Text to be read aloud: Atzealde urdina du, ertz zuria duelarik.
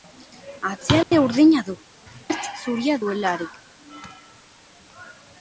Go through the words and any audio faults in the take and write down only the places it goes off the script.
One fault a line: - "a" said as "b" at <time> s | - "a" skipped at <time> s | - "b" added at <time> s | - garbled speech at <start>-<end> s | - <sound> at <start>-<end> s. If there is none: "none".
- dropout at 1.0-1.1 s